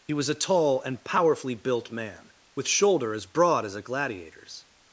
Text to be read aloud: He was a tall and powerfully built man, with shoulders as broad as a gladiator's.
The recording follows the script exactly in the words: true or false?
false